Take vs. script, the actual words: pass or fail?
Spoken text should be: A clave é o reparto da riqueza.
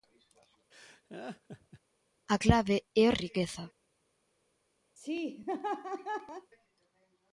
fail